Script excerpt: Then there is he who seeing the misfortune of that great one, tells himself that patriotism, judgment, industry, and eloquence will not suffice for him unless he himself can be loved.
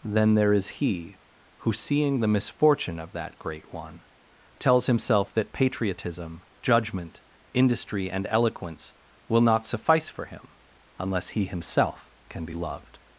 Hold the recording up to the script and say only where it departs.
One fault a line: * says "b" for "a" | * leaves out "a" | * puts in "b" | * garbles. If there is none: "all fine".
all fine